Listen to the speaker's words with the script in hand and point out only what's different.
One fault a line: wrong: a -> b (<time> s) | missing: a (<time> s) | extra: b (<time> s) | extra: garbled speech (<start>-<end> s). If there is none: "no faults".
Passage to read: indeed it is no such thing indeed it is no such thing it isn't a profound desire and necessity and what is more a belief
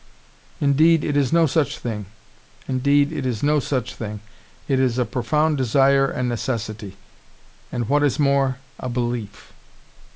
wrong: isn't -> is (4.8 s)